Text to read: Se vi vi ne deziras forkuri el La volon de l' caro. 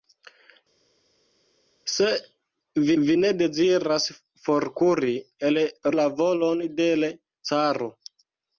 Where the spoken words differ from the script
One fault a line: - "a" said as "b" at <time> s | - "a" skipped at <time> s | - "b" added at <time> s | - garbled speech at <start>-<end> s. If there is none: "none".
none